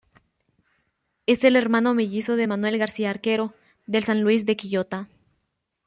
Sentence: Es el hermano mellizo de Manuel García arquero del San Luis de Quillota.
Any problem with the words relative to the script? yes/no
no